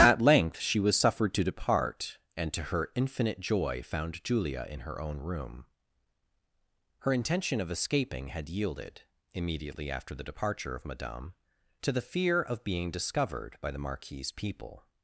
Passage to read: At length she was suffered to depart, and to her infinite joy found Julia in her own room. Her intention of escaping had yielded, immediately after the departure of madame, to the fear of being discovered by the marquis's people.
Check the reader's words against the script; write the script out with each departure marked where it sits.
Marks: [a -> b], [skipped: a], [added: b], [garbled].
At length she was suffered to depart, and to her infinite joy found Julia in her own room. Her intention of escaping had yielded, immediately after the departure of madame, to the fear of being discovered by the marquis's people.